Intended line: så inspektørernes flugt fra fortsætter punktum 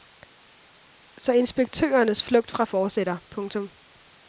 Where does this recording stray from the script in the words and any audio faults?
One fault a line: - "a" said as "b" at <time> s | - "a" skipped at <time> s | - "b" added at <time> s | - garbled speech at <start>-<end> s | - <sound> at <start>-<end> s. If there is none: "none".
none